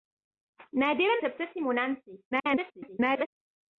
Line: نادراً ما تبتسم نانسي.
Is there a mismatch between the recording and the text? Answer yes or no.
yes